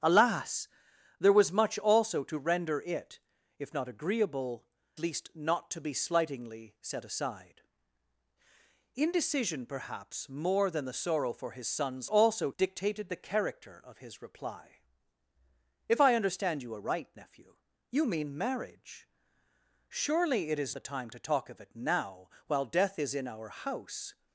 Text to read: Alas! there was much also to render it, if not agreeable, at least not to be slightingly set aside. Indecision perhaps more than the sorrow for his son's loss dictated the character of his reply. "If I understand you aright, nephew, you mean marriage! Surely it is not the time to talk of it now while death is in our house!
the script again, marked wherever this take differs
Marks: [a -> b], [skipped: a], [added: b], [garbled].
Alas! there was much also to render it, if not agreeable, [skipped: at] least not to be slightingly set aside. Indecision perhaps more than the sorrow for his son's [loss -> also] dictated the character of his reply. "If I understand you aright, nephew, you mean marriage! Surely it is [skipped: not] the time to talk of it now while death is in our house!